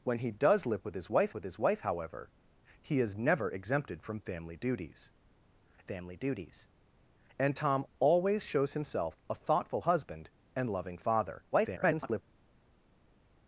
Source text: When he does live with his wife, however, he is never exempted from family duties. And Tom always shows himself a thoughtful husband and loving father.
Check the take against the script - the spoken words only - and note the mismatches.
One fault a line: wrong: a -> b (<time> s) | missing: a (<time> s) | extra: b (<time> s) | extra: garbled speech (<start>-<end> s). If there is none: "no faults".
extra: with his wife (1.3 s)
extra: family duties (5.8 s)
extra: garbled speech (11.5-12.2 s)